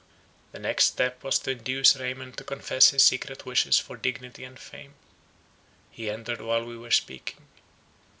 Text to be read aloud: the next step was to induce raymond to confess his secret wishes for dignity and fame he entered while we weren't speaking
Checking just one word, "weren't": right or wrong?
wrong